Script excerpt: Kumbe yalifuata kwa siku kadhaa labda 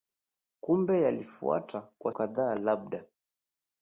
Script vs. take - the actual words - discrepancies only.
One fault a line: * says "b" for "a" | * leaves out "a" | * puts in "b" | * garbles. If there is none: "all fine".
* leaves out "siku"